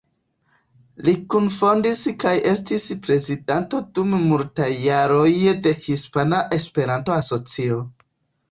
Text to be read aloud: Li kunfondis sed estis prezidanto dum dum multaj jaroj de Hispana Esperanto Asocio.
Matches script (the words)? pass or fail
fail